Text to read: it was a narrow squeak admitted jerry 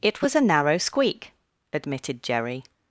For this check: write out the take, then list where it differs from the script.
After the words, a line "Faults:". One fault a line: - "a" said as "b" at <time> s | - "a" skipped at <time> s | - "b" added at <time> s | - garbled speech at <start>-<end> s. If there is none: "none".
it was a narrow squeak admitted jerry
Faults:
none